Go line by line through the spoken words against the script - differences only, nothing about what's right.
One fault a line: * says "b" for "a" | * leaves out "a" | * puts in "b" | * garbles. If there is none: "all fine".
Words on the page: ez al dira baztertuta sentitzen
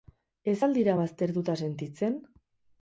all fine